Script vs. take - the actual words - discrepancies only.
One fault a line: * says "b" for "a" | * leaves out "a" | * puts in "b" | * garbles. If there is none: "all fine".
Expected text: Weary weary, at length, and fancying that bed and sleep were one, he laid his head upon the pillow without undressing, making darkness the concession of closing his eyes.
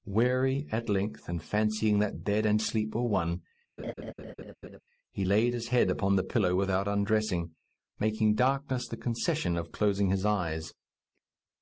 * leaves out "weary"